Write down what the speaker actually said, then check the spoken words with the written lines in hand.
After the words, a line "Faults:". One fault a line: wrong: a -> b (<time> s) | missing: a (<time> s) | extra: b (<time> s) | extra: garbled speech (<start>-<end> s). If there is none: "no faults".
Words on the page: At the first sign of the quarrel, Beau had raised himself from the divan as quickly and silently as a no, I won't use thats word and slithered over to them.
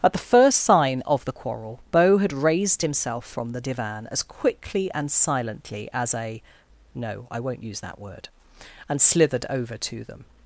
At the first sign of the quarrel, Beau had raised himself from the divan as quickly and silently as a no, I won't use that word and slithered over to them.
Faults:
wrong: thats -> that (7.8 s)